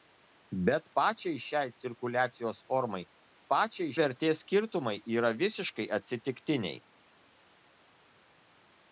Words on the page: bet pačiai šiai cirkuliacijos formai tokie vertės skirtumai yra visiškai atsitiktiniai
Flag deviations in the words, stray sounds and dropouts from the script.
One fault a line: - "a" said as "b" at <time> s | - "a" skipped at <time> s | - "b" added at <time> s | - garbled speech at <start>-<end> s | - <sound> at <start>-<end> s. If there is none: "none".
- "tokie" said as "pačiai" at 3.5 s